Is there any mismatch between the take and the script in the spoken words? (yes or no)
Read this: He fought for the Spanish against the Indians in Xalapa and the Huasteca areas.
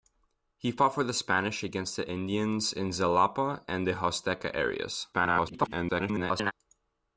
yes